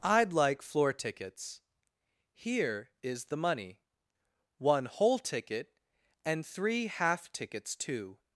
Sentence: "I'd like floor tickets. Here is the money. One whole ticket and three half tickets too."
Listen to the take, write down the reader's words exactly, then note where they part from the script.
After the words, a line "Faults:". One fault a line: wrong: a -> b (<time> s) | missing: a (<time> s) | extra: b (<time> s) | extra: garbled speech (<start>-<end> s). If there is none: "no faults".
"I'd like floor tickets. Here is the money. One whole ticket and three half tickets too."
Faults:
no faults